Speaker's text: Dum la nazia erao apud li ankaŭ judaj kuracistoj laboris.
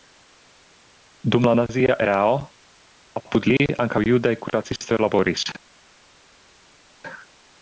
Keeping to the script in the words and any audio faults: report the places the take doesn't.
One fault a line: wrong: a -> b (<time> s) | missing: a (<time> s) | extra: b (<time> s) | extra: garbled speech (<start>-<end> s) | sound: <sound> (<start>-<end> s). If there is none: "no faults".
no faults